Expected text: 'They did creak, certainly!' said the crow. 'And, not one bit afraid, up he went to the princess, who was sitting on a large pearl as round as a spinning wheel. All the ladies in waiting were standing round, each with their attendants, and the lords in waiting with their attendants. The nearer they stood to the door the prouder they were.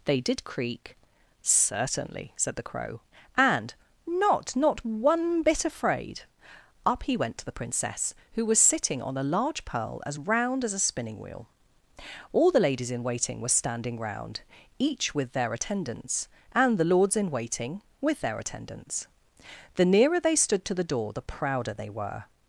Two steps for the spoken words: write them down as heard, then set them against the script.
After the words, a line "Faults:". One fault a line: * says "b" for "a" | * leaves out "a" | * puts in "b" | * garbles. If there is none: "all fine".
'They did creak, certainly!' said the crow. 'And, not not one bit afraid, up he went to the princess, who was sitting on a large pearl as round as a spinning wheel. All the ladies in waiting were standing round, each with their attendants, and the lords in waiting with their attendants. The nearer they stood to the door the prouder they were.
Faults:
* puts in "not"